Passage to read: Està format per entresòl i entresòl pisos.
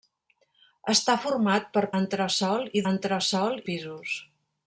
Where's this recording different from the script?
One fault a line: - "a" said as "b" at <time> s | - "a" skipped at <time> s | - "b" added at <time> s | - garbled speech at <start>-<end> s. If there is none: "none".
none